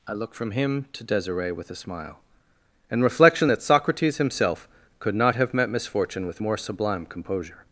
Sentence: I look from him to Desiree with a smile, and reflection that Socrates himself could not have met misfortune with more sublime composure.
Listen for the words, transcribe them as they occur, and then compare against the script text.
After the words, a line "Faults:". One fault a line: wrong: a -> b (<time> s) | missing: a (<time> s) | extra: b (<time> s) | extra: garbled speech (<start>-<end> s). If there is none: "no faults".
I look from him to Desiree with a smile, and reflection that Socrates himself could not have met misfortune with more sublime composure.
Faults:
no faults